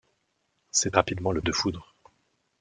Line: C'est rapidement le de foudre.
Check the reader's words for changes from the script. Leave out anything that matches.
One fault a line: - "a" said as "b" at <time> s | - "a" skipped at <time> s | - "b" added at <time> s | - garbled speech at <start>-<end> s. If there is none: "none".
none